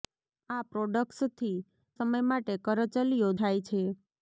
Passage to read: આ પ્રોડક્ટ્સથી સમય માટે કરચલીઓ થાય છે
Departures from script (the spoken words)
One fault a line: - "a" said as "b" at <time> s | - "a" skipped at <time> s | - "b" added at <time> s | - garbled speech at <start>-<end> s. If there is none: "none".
none